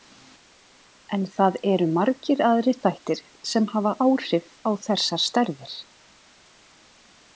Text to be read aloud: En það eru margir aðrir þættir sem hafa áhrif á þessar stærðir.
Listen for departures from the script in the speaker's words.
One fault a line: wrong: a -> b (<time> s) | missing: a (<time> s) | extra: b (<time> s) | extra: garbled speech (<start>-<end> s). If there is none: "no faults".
no faults